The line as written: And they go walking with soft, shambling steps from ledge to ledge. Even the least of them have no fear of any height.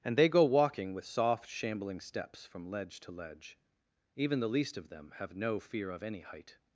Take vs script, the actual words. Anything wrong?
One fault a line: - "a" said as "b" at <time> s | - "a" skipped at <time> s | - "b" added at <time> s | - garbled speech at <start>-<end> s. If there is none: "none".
none